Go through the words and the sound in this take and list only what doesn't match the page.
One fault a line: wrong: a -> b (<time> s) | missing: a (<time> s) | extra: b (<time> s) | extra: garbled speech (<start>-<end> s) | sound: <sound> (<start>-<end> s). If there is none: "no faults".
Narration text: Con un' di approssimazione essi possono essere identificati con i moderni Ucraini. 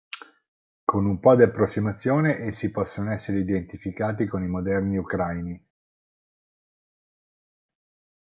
extra: po (1.2 s)